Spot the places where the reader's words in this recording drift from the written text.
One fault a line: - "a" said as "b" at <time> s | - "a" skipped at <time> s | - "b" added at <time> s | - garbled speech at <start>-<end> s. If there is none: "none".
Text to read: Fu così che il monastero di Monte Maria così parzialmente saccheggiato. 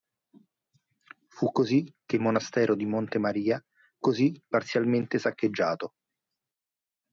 none